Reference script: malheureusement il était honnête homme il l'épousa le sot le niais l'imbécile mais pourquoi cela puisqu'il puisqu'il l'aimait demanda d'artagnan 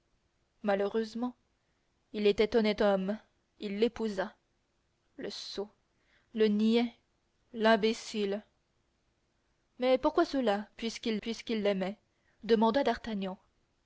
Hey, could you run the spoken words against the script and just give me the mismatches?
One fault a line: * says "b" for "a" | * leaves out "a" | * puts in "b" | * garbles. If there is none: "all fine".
all fine